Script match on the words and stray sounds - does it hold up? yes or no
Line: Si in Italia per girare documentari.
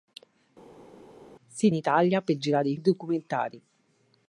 yes